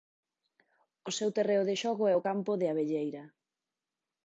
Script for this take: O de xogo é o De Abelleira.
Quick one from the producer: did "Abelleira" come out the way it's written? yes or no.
yes